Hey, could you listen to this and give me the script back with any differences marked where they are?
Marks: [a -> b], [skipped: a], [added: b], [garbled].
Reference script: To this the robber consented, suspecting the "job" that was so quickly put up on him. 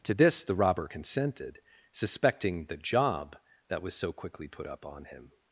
To this the robber consented, suspecting the "job" that was so quickly put up on him.